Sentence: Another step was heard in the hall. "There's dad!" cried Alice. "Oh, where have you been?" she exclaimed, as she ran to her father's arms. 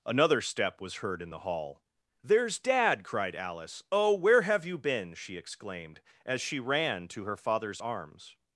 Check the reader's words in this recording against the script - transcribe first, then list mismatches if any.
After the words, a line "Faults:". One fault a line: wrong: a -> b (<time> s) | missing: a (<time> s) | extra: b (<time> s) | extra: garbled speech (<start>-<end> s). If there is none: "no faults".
Another step was heard in the hall. "There's dad!" cried Alice. "Oh, where have you been?" she exclaimed, as she ran to her father's arms.
Faults:
no faults